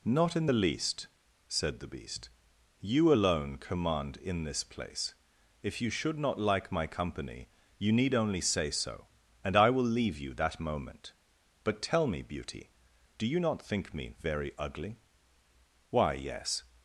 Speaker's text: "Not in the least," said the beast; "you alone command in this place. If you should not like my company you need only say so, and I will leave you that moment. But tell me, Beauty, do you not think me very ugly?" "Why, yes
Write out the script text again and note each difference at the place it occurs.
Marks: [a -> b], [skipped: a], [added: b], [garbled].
"Not in the least," said the beast; "you alone command in this place. If you should not like my company you need only say so, and I will leave you that moment. But tell me, Beauty, do you not think me very ugly?" "Why, yes